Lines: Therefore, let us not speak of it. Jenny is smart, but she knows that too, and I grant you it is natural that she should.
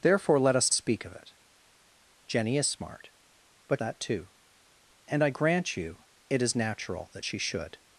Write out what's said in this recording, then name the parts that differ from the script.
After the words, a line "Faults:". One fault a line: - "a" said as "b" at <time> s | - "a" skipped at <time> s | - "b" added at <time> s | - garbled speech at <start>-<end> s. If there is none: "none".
Therefore, let us speak of it. Jenny is smart, but that too, and I grant you it is natural that she should.
Faults:
- "not" skipped at 0.7 s
- "she knows" skipped at 3.8 s